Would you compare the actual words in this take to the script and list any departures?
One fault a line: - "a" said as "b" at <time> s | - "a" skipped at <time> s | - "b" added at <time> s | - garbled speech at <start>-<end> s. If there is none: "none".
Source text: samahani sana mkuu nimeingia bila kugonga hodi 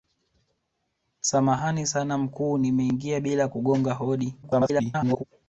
- garbled speech at 4.4-5.2 s